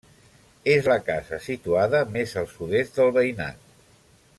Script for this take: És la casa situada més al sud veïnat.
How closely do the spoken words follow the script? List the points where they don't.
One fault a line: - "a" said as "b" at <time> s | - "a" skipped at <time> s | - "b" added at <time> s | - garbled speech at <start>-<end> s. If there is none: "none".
- "est del" added at 2.8 s